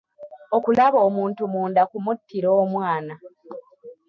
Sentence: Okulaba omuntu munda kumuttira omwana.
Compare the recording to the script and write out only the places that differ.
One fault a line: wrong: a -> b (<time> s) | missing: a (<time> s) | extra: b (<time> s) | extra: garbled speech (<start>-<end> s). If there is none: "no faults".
no faults